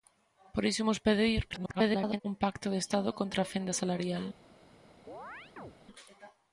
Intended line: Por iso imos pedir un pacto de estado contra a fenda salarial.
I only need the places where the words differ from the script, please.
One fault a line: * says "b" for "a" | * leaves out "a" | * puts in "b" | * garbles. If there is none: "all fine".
* garbles